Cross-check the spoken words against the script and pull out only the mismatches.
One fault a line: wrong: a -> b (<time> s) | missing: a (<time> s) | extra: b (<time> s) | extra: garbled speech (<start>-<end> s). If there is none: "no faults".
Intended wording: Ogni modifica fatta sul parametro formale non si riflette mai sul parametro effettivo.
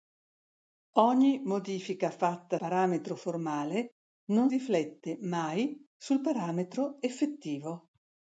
missing: sul (2.6 s)
missing: si (4.5 s)